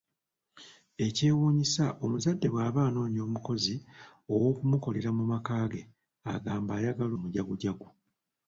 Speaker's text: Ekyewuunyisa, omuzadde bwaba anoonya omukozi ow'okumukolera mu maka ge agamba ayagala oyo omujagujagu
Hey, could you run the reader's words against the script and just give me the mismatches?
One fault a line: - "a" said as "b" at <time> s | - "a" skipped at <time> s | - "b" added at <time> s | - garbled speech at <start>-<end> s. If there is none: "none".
- "oyo" skipped at 7.1 s